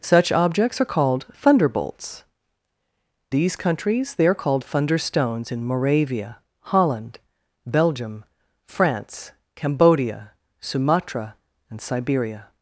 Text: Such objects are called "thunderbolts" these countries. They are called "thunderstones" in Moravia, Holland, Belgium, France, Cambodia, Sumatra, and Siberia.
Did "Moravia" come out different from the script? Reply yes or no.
no